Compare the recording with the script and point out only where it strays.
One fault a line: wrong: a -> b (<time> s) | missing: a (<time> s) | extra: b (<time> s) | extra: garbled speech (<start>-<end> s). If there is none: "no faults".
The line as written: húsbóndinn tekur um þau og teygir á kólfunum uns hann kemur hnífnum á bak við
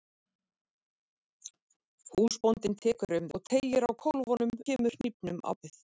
missing: þau (3.3 s)
missing: uns hann (4.6 s)
missing: bak (5.5 s)